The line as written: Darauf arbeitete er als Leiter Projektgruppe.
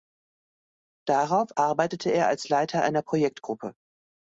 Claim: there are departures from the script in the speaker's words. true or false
true